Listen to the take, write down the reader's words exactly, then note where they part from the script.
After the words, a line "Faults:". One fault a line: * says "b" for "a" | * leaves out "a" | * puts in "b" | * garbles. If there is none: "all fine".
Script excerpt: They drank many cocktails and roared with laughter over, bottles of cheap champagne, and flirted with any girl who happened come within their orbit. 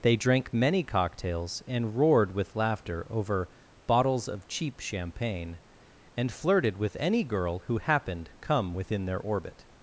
They drank many cocktails and roared with laughter over, bottles of cheap champagne, and flirted with any girl who happened come within their orbit.
Faults:
all fine